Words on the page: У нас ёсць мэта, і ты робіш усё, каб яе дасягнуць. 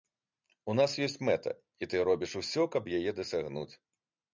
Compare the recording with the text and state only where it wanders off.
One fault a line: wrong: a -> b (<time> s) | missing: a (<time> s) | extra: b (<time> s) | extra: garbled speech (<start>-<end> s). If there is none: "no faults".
no faults